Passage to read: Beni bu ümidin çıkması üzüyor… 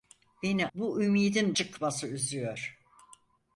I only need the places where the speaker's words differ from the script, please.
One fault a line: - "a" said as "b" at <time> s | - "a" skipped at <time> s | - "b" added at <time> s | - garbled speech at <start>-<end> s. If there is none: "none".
none